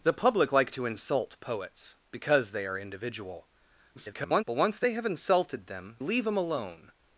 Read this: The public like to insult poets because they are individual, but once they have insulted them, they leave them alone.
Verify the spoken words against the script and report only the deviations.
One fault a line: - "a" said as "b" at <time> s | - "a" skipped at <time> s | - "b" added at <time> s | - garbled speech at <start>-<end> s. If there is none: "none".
- garbled speech at 3.9-4.4 s
- "they" skipped at 6.0 s